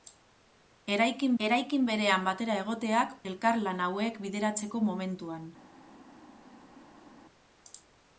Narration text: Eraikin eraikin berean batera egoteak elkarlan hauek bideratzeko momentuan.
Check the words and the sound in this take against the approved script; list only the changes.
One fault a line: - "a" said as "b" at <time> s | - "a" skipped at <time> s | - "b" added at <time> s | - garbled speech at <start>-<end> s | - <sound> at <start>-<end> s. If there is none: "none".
none